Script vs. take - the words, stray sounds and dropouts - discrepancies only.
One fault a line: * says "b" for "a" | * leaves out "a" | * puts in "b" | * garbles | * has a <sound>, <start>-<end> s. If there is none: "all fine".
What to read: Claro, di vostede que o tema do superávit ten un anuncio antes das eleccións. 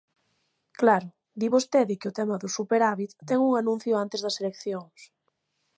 all fine